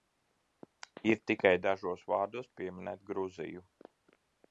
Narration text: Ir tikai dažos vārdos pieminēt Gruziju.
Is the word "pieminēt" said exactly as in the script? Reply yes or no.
yes